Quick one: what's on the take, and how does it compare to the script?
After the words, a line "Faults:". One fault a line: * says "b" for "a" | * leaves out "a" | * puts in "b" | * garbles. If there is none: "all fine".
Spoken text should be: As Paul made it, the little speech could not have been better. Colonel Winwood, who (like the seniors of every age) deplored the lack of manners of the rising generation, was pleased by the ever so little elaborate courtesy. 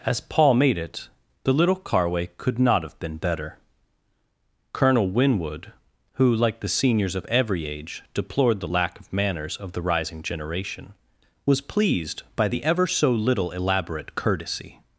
As Paul made it, the little carway could not have been better. Colonel Winwood, who (like the seniors of every age) deplored the lack of manners of the rising generation, was pleased by the ever so little elaborate courtesy.
Faults:
* says "carway" for "speech"